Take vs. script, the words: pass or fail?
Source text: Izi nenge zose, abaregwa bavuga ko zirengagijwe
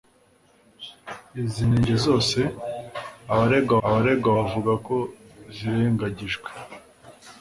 fail